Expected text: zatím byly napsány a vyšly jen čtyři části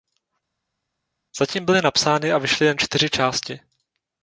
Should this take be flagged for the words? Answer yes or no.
no